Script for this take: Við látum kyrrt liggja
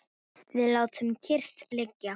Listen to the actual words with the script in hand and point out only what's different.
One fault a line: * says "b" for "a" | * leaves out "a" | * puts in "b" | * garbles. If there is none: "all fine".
all fine